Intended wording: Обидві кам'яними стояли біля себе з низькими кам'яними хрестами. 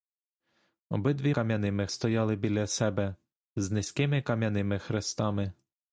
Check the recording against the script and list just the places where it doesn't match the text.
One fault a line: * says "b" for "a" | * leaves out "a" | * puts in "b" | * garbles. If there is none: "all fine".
all fine